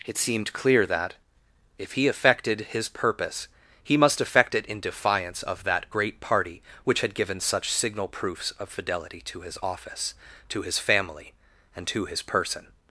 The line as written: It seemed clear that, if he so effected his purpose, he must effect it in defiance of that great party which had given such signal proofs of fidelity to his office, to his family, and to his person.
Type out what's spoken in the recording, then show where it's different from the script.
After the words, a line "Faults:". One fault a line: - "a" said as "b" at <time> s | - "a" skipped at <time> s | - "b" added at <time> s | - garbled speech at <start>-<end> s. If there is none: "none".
It seemed clear that, if he effected his purpose, he must effect it in defiance of that great party which had given such signal proofs of fidelity to his office, to his family, and to his person.
Faults:
- "so" skipped at 2.1 s